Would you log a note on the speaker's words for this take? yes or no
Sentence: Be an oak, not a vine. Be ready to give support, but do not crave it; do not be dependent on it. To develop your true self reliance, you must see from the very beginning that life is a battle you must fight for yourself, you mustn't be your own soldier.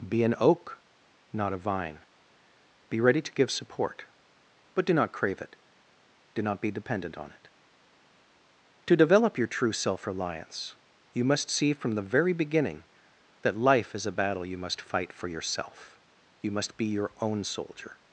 yes